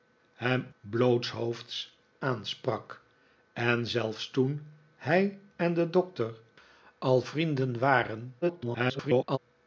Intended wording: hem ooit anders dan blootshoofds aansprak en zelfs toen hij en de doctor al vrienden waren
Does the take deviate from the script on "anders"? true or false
true